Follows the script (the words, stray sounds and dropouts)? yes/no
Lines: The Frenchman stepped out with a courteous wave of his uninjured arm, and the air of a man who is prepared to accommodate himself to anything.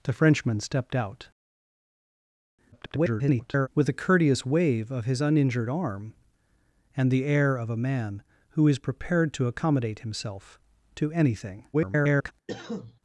no